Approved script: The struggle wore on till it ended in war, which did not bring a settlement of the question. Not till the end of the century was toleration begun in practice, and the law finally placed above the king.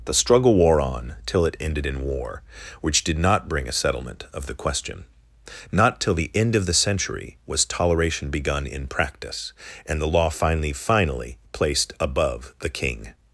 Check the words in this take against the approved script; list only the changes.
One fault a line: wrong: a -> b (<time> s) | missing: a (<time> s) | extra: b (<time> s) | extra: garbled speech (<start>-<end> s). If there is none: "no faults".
extra: finally (10.7 s)